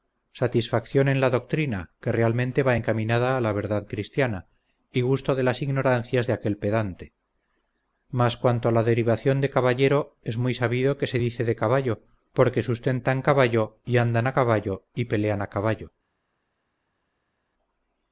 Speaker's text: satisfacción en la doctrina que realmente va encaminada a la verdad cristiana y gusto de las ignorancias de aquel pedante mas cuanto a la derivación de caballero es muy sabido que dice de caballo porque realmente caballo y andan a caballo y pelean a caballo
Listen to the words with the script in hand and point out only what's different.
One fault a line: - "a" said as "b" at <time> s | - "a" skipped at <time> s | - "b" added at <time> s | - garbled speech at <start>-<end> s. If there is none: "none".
- "se" added at 11.1 s
- "realmente" said as "sustentan" at 12.6 s